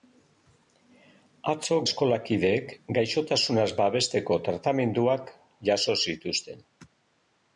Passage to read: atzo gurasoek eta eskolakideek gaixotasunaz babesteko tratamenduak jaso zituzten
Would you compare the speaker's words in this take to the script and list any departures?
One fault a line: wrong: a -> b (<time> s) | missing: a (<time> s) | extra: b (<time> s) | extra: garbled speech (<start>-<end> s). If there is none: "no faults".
missing: gurasoek eta (1.8 s)